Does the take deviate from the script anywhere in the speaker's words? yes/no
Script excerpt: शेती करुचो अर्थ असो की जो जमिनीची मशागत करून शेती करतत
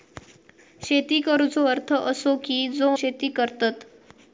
yes